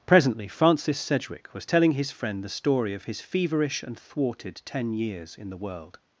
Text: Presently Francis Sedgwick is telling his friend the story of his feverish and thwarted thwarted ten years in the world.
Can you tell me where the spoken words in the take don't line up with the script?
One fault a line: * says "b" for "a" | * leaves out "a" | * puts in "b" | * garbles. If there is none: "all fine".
* says "was" for "is"
* leaves out "thwarted"